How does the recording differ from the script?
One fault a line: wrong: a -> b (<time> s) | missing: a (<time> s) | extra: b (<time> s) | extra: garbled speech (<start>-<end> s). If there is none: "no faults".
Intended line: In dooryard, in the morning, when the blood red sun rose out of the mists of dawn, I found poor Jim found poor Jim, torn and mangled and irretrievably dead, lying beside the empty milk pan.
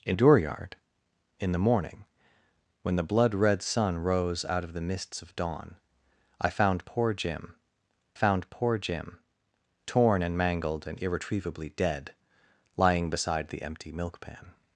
no faults